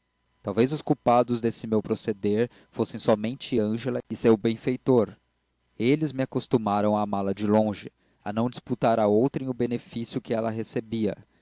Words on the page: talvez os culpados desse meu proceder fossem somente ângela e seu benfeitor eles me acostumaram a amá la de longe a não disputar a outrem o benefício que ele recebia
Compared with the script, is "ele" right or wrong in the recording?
wrong